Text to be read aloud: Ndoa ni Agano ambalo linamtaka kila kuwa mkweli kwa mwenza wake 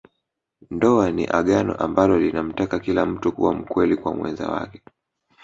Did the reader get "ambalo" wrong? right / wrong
right